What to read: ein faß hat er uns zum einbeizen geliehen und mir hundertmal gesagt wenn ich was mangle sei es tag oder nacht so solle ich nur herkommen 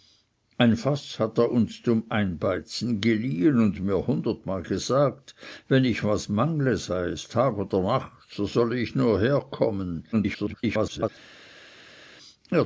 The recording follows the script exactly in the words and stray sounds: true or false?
false